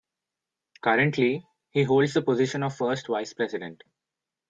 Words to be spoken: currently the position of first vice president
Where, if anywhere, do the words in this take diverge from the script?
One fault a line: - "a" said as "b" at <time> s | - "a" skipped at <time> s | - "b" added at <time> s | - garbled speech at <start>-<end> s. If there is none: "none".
- "he holds" added at 1.7 s